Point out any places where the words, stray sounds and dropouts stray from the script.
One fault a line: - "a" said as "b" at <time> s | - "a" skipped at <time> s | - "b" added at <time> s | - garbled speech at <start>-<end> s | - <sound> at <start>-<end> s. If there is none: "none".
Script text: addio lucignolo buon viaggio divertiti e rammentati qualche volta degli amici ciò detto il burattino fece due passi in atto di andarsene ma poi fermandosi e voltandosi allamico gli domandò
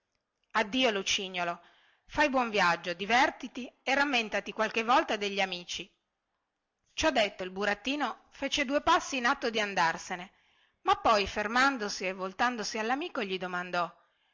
- "fai" added at 2.1 s